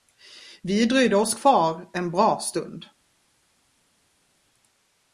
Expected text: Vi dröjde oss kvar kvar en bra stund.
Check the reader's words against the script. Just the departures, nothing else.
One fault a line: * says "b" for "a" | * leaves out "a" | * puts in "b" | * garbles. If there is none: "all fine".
* leaves out "kvar"